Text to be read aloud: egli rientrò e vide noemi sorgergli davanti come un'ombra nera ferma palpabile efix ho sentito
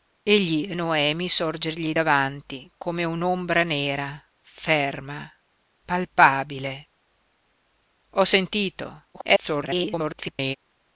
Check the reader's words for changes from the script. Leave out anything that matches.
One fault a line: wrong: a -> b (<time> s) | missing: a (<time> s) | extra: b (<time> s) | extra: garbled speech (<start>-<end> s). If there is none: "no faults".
missing: rientrò e vide (0.7 s)
missing: efix (6.9 s)
extra: garbled speech (9.1-10.6 s)